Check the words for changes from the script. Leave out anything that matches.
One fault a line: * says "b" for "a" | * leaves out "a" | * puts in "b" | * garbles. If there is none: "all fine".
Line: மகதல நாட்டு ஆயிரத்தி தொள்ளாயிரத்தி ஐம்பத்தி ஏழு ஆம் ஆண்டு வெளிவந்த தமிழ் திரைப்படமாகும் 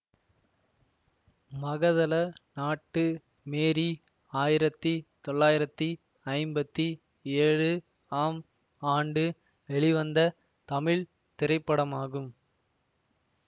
* puts in "மேரி"